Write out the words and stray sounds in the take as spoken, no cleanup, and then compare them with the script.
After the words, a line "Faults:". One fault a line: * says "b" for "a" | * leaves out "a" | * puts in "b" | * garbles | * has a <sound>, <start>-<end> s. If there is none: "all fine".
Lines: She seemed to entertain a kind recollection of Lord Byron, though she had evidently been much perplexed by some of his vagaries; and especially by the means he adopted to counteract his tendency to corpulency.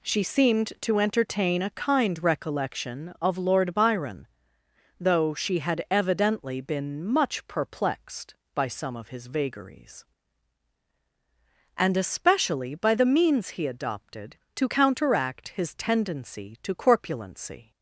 She seemed to entertain a kind recollection of Lord Byron, though she had evidently been much perplexed by some of his vagaries; and especially by the means he adopted to counteract his tendency to corpulency.
Faults:
all fine